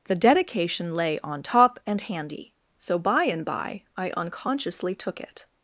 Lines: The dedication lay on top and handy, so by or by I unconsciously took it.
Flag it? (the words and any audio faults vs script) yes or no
yes